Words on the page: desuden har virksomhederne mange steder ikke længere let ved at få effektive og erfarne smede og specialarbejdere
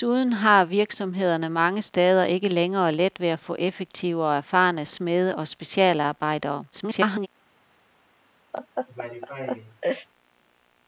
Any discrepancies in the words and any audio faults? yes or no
yes